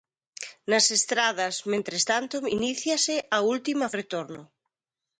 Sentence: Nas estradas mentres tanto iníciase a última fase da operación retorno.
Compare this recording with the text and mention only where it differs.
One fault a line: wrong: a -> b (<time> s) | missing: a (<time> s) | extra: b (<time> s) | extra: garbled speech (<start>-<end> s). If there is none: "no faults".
missing: fase da operación (3.9 s)